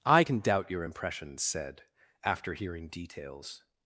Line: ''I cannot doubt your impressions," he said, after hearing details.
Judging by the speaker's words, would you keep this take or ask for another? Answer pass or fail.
fail